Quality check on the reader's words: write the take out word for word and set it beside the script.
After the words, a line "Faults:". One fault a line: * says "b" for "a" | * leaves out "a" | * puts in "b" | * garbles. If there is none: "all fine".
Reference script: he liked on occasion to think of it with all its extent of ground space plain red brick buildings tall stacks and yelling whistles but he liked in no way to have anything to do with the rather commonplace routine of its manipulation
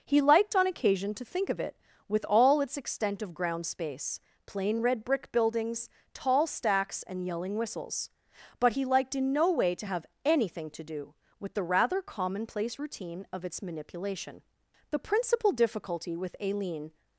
he liked on occasion to think of it with all its extent of ground space plain red brick buildings tall stacks and yelling whistles but he liked in no way to have anything to do with the rather commonplace routine of its manipulation the principal difficulty with aileen
Faults:
* puts in "the principal difficulty with aileen"